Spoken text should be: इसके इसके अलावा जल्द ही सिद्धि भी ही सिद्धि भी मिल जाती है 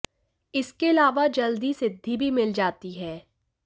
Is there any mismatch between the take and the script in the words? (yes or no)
yes